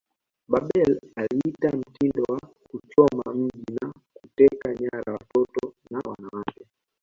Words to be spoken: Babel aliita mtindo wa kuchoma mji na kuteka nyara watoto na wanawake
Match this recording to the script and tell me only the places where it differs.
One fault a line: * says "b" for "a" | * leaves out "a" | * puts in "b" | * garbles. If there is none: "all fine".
all fine